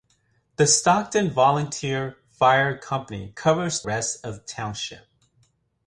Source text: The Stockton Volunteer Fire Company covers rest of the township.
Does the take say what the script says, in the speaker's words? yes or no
yes